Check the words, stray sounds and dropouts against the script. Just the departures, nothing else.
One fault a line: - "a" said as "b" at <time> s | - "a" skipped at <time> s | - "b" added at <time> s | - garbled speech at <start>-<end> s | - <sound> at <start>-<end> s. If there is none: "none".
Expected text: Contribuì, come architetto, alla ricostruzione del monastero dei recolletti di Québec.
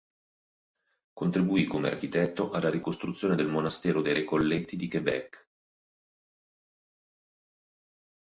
none